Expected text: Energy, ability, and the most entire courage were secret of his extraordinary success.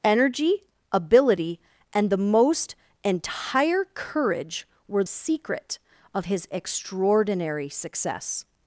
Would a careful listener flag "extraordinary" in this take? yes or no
no